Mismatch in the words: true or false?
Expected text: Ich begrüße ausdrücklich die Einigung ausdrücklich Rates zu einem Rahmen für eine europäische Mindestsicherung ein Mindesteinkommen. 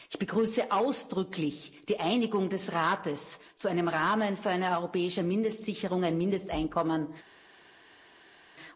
true